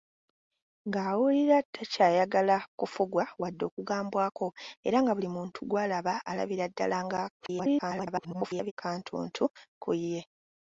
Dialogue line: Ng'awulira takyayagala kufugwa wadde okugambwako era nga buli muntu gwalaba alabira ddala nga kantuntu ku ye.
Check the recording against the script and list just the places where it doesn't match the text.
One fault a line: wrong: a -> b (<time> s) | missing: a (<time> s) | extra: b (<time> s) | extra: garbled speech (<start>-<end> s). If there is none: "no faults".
extra: garbled speech (7.4-8.7 s)